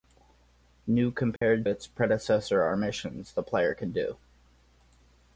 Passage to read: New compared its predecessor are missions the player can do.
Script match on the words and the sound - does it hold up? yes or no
no